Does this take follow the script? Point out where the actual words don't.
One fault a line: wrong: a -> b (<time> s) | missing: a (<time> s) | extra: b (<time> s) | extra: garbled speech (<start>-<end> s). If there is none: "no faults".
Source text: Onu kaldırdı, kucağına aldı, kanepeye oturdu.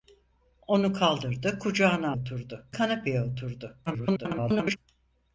wrong: aldı -> oturdu (2.1 s)
extra: garbled speech (3.9-4.8 s)